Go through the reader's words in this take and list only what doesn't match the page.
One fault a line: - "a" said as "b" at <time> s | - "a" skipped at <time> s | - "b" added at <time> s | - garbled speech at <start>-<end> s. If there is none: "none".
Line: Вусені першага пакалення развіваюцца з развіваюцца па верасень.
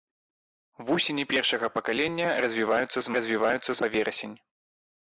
none